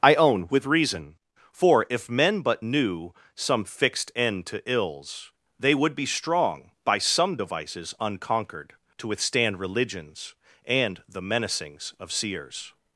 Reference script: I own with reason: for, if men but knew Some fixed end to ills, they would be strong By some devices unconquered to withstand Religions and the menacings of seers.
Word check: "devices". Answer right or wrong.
right